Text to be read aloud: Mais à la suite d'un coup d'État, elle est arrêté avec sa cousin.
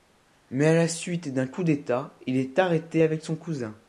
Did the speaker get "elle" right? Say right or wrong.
wrong